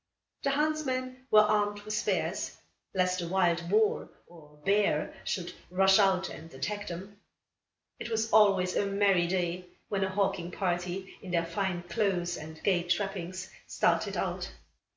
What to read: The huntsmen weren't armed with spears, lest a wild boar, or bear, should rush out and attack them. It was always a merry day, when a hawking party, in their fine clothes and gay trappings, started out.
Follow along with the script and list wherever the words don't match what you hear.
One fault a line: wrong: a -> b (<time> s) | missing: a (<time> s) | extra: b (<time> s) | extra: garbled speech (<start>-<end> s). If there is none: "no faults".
wrong: weren't -> were (1.3 s)